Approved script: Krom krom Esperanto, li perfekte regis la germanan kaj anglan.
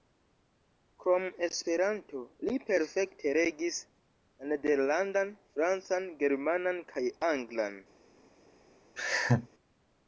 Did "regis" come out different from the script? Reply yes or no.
no